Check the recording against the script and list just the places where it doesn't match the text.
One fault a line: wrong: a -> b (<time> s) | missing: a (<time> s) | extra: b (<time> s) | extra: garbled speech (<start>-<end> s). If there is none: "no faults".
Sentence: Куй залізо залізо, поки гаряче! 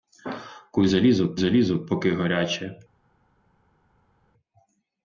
no faults